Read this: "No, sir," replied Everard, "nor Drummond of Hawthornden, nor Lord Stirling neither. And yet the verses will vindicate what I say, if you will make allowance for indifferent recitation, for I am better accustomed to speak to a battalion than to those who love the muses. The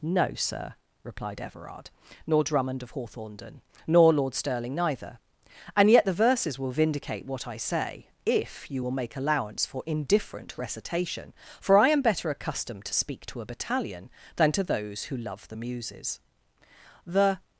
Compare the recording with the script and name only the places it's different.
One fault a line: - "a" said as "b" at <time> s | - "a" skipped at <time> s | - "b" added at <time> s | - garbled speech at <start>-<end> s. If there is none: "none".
none